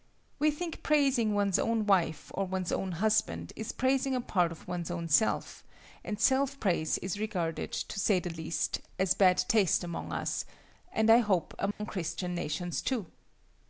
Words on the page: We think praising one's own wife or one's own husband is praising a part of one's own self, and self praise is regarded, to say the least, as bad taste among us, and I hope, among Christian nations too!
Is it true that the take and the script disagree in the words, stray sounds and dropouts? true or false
true